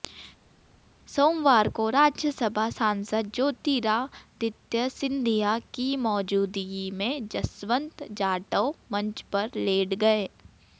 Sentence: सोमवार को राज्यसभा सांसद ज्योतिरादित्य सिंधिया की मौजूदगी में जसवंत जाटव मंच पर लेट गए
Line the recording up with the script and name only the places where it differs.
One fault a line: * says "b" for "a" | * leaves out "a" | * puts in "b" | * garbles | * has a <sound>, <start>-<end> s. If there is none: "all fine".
all fine